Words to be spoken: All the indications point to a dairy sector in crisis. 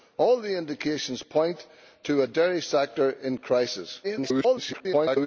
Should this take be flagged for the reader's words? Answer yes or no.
yes